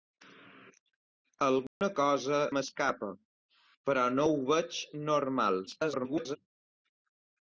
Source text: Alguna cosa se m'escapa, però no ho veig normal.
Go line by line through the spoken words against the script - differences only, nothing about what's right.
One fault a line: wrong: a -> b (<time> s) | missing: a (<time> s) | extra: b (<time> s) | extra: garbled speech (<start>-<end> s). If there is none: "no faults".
missing: se (2.4 s)
extra: garbled speech (5.7-6.4 s)